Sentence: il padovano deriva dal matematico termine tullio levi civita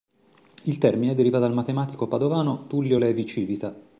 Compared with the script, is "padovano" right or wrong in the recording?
wrong